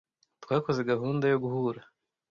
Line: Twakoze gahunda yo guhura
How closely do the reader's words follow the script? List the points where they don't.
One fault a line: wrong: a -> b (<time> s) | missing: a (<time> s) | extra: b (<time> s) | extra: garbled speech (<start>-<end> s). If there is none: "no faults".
no faults